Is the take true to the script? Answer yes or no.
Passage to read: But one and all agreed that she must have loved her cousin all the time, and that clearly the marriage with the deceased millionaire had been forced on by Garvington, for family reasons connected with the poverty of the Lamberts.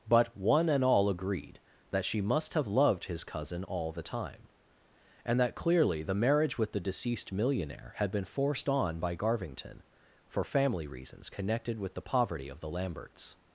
no